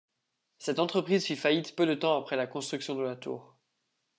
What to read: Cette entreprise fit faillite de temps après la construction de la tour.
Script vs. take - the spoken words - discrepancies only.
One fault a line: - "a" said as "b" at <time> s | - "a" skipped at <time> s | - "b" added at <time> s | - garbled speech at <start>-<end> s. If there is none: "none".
- "peu" added at 1.8 s